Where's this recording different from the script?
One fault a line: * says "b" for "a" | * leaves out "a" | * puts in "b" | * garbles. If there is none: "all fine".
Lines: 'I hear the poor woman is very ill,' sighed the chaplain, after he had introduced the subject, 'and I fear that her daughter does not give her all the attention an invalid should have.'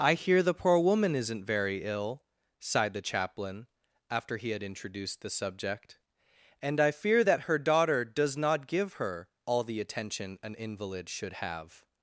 * says "isn't" for "is"